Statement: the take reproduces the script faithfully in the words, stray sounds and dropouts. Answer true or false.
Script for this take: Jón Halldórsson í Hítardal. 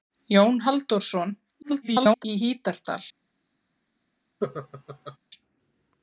false